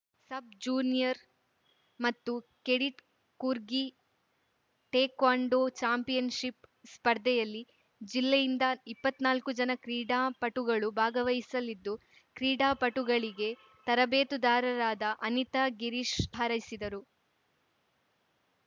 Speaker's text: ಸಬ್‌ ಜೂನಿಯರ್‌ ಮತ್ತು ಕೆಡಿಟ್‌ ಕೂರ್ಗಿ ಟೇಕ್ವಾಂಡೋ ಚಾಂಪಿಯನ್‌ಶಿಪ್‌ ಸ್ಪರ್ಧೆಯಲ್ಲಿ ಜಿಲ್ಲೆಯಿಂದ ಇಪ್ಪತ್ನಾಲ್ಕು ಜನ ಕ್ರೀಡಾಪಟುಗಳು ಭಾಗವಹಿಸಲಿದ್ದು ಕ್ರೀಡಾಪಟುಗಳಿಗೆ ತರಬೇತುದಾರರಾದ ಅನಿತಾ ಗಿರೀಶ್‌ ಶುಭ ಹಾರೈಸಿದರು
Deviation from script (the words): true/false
true